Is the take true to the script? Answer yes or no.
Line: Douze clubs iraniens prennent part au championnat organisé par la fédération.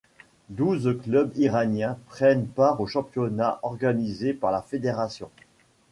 yes